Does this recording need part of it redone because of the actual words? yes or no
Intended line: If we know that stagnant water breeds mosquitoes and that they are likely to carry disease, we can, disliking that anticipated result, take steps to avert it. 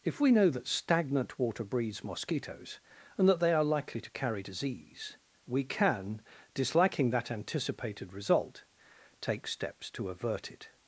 no